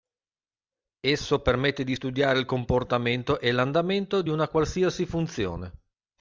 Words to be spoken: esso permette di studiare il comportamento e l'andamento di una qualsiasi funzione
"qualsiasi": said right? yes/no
yes